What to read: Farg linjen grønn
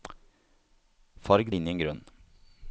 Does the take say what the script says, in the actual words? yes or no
yes